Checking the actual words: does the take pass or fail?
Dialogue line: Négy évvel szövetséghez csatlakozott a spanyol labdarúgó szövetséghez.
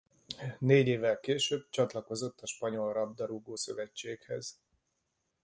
fail